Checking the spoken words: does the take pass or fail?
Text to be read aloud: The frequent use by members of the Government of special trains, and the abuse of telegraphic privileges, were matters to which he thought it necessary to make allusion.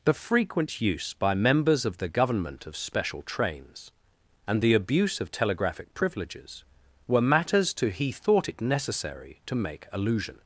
fail